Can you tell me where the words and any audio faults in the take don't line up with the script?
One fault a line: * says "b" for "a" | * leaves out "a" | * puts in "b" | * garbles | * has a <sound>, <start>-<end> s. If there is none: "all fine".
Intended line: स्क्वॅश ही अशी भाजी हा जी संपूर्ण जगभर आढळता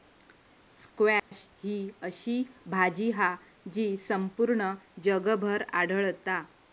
* has a dropout, 1.2-1.3 s